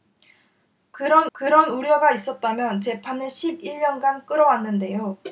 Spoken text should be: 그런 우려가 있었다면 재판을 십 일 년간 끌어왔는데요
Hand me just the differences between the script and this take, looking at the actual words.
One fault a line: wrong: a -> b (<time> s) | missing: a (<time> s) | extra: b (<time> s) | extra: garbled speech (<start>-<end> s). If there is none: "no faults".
extra: 그런 (1.3 s)